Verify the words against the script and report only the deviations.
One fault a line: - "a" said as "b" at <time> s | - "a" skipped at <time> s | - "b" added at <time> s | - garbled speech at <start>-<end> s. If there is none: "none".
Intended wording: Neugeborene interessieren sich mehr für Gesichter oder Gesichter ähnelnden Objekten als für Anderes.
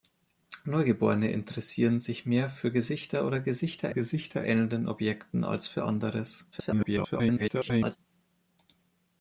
- "Gesichter" added at 3.9 s
- garbled speech at 6.5-8.0 s